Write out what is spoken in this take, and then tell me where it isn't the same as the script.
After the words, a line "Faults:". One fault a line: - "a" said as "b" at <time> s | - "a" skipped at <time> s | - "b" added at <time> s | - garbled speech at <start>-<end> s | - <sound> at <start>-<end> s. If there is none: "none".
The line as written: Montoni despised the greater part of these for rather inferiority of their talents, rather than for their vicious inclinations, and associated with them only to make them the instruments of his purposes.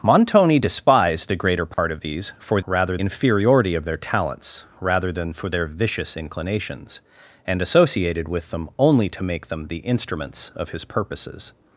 Montoni despised the greater part of these for rather inferiority of their talents, rather than for their vicious inclinations, and associated with them only to make them the instruments of his purposes.
Faults:
- dropout at 1.7-1.8 s